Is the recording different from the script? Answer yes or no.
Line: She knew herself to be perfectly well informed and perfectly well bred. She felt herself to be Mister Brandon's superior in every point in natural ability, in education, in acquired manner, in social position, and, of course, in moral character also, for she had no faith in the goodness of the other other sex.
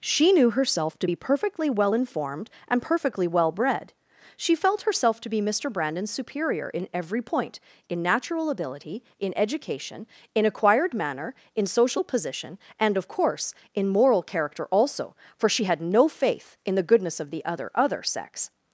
no